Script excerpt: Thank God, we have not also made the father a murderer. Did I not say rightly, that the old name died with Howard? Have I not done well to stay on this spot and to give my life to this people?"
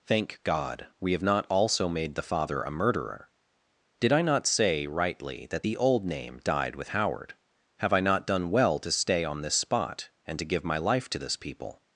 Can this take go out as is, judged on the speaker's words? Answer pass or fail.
pass